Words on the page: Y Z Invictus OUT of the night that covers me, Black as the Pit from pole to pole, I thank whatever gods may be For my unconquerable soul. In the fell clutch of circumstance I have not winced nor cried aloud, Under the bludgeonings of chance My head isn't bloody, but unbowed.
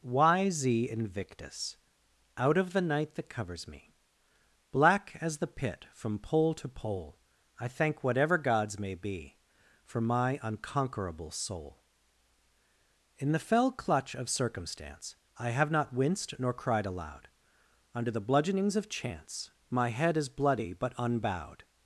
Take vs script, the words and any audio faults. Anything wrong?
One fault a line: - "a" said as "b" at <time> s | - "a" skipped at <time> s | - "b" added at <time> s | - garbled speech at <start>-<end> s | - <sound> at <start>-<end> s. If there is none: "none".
- "isn't" said as "is" at 20.2 s